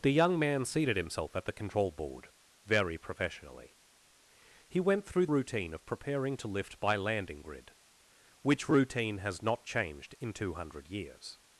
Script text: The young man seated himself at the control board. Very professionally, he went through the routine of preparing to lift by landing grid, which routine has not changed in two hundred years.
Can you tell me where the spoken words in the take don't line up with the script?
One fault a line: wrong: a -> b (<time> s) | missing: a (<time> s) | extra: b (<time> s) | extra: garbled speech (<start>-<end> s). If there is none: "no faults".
missing: the (5.3 s)